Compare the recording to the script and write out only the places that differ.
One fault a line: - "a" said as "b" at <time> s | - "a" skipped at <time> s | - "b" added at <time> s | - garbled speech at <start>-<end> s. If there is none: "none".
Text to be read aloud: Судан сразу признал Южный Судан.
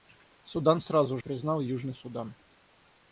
none